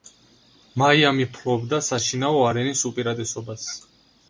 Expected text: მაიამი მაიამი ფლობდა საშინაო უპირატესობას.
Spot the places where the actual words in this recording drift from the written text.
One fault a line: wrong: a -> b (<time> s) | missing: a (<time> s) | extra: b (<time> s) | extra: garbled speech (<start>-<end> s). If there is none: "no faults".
missing: მაიამი (1.3 s)
extra: არენის (2.5 s)